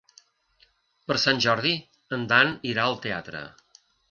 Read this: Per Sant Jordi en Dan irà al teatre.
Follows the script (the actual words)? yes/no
yes